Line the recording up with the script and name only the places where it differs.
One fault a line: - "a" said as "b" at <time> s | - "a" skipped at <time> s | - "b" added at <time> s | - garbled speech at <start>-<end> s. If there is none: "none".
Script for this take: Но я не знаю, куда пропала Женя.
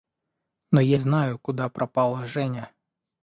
- "не" skipped at 1.0 s